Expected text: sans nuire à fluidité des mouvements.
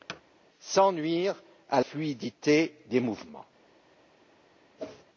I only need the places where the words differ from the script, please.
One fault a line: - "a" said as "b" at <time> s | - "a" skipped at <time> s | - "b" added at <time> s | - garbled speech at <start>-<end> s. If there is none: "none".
none